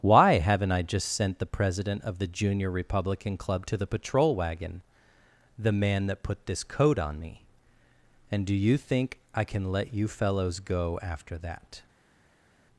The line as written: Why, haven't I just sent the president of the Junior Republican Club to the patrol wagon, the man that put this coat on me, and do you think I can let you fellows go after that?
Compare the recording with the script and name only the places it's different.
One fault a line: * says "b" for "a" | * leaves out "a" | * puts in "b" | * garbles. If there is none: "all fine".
all fine